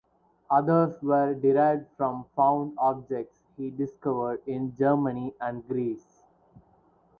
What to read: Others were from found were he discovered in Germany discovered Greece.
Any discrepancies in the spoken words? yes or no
yes